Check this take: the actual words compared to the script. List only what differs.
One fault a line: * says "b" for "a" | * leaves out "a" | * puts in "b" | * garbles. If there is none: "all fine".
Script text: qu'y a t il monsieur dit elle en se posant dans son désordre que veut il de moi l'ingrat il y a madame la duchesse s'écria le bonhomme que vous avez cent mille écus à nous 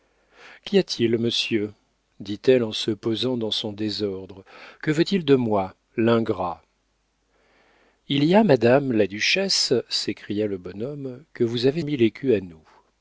* leaves out "cent"